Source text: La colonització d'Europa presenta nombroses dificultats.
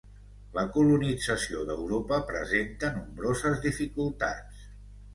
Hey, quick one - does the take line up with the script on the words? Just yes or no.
yes